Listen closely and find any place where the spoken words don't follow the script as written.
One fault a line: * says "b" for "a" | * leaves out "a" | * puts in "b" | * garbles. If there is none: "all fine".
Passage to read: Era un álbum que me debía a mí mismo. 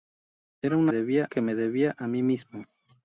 * says "debía" for "álbum"